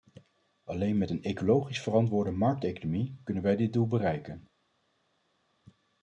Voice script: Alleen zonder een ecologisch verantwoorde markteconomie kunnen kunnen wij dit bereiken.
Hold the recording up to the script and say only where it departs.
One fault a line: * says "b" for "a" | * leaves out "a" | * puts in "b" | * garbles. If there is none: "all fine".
* says "met" for "zonder"
* leaves out "kunnen"
* puts in "doel"